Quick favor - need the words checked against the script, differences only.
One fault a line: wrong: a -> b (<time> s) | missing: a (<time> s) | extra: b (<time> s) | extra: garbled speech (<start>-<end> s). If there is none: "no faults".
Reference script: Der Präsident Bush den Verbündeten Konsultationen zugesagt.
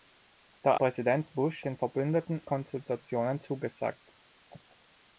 no faults